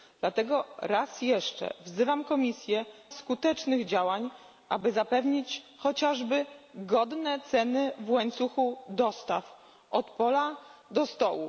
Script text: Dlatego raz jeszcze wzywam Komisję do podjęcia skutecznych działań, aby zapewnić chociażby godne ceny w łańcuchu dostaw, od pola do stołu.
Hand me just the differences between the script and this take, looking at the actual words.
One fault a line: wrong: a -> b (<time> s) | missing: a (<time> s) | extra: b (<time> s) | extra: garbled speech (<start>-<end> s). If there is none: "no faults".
missing: do podjęcia (2.9 s)